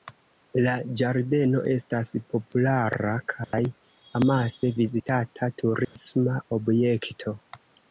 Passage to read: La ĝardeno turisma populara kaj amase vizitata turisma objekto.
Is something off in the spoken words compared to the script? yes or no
yes